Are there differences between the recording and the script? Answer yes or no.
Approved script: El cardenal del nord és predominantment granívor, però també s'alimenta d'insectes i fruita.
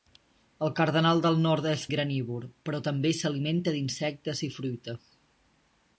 yes